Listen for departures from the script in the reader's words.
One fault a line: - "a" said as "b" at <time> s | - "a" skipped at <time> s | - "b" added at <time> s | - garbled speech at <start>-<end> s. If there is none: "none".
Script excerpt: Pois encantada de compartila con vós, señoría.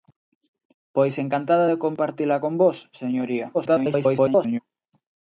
- garbled speech at 3.5-4.6 s